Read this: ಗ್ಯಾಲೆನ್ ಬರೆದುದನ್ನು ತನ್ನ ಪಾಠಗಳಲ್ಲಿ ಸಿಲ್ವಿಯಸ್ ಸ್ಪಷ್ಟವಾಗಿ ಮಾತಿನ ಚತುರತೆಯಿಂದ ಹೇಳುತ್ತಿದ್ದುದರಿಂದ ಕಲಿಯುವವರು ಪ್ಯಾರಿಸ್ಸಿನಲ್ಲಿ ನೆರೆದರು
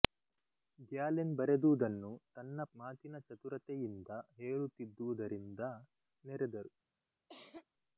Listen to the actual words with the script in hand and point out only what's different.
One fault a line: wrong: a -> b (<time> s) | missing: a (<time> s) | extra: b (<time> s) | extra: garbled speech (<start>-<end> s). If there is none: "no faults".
missing: ಪಾಠಗಳಲ್ಲಿ ಸಿಲ್ವಿಯಸ್ ಸ್ಪಷ್ಟವಾಗಿ (2.6 s)
missing: ಕಲಿಯುವವರು ಪ್ಯಾರಿಸ್ಸಿನಲ್ಲಿ (5.6 s)